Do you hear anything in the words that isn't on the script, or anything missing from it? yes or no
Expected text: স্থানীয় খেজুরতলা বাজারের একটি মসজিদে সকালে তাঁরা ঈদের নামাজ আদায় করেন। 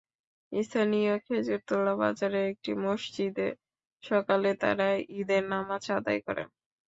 no